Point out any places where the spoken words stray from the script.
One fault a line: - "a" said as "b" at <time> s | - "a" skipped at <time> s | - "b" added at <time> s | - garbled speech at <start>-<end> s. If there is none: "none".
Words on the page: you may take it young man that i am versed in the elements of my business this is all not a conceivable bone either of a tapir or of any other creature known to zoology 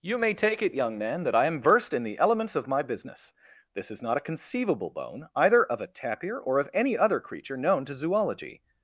- "all" skipped at 4.0 s